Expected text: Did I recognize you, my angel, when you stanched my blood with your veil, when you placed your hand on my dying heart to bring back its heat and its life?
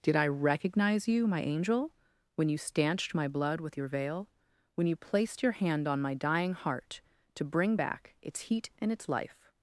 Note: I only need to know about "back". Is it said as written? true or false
true